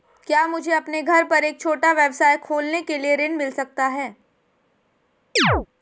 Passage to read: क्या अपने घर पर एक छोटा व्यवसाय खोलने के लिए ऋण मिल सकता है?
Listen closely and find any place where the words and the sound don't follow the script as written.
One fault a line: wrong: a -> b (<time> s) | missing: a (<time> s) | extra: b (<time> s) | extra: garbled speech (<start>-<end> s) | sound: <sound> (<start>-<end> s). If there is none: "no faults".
extra: मुझे (0.5 s)
sound: chirp (5.4-5.7 s)